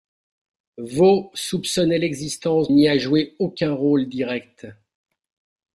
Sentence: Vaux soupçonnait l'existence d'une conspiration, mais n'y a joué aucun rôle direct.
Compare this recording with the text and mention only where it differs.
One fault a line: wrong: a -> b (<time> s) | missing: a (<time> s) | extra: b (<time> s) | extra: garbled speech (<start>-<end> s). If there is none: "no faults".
missing: d'une conspiration mais (2.7 s)